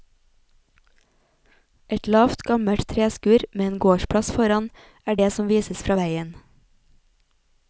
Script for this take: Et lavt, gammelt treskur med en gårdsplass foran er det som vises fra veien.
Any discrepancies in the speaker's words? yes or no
no